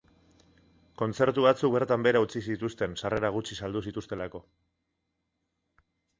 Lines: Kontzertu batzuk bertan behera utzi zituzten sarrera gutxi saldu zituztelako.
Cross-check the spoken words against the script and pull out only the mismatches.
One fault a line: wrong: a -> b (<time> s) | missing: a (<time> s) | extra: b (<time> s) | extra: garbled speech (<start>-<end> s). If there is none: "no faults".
no faults